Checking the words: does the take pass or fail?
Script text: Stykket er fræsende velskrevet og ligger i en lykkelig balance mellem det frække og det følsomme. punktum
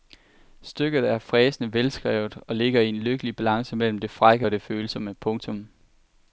pass